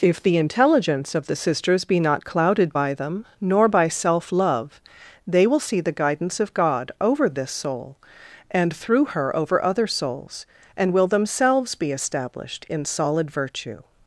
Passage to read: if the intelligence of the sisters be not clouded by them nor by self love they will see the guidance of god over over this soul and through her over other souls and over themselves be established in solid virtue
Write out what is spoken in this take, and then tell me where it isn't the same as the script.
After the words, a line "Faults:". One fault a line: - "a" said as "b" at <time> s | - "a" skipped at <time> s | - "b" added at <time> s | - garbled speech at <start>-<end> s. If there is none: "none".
if the intelligence of the sisters be not clouded by them nor by self love they will see the guidance of god over this soul and through her over other souls and will themselves be established in solid virtue
Faults:
- "over" skipped at 7.3 s
- "over" said as "will" at 10.9 s